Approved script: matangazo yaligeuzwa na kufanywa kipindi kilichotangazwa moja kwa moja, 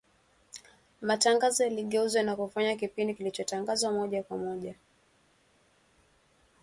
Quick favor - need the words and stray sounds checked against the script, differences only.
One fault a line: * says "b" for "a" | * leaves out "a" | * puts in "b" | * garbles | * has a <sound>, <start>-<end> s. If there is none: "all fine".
all fine